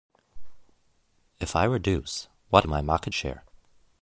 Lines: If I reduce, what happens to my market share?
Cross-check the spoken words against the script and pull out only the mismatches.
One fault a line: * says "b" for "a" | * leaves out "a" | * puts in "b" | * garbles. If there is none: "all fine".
* leaves out "happens to"